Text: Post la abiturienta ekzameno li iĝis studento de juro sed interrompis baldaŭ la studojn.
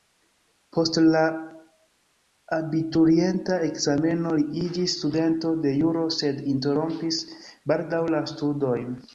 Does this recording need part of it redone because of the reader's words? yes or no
no